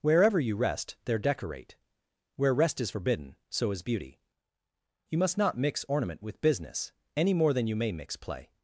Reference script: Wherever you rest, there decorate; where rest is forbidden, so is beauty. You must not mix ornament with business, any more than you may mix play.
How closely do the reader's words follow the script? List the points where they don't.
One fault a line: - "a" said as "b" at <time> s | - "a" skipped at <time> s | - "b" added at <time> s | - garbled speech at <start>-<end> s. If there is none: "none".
none